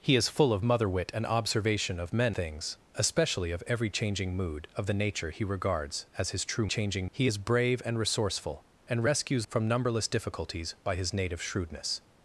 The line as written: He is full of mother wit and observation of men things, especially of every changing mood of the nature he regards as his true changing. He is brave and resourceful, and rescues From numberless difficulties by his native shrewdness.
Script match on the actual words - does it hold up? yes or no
yes